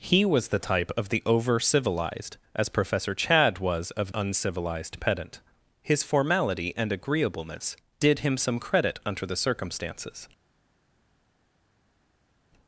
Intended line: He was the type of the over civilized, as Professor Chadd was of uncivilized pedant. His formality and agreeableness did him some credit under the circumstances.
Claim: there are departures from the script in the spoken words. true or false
false